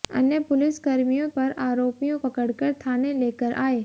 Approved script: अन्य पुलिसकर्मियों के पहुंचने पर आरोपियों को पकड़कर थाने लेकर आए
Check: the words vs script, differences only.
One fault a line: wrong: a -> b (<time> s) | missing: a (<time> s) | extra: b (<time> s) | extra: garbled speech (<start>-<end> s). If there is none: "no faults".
missing: के पहुंचने (1.3 s)
missing: को (2.2 s)